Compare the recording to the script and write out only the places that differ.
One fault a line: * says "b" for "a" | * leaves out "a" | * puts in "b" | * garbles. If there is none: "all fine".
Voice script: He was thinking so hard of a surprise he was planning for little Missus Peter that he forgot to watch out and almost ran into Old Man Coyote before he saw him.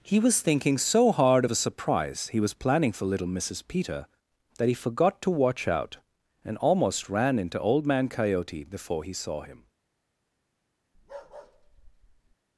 all fine